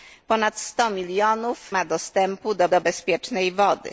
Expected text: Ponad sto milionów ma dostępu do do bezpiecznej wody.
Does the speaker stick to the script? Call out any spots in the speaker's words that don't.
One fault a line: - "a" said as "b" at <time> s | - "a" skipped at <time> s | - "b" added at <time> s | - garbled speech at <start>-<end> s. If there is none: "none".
none